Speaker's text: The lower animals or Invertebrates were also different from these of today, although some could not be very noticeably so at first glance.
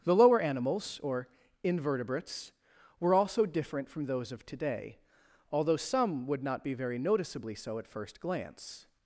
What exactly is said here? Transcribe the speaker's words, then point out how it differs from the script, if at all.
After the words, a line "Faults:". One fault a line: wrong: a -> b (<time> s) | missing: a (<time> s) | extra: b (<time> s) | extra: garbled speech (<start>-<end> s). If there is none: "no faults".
The lower animals or Invertebrates were also different from those of today, although some would not be very noticeably so at first glance.
Faults:
wrong: these -> those (4.0 s)
wrong: could -> would (6.2 s)